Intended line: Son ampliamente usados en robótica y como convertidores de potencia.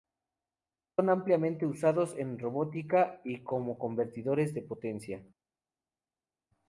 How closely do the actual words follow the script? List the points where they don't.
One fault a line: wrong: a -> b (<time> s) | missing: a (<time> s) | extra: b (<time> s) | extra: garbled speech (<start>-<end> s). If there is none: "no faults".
no faults